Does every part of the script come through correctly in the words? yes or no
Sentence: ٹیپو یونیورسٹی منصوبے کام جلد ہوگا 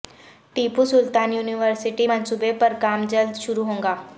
no